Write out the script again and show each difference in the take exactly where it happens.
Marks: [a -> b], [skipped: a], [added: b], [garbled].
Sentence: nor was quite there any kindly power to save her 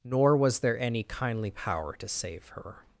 nor was [skipped: quite] there any kindly power to save her